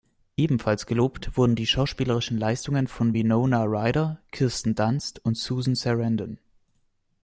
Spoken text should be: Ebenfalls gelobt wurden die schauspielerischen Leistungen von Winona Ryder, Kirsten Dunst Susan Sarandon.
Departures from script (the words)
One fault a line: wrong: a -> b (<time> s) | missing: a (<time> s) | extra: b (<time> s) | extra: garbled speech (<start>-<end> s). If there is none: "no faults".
extra: und (5.3 s)